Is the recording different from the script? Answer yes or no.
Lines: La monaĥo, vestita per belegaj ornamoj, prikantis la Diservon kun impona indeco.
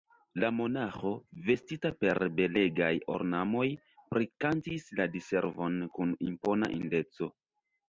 no